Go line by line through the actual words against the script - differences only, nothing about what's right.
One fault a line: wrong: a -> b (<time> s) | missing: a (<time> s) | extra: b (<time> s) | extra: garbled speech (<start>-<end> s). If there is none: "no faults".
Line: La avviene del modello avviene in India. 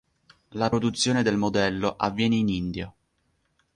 wrong: avviene -> produzione (0.7 s)